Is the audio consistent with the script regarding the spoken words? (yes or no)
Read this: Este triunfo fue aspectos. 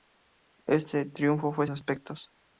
yes